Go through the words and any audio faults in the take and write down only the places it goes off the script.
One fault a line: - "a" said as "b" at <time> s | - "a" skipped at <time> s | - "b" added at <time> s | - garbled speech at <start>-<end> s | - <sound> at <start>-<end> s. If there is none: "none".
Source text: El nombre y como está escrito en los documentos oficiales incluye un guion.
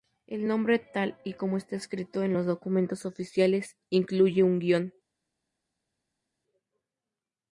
- "tal" added at 0.8 s